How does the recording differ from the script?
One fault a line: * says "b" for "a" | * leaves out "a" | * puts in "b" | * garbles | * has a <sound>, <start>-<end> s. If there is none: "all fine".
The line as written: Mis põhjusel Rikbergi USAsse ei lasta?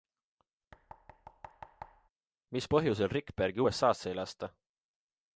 * has a thud, 0.7-2.1 s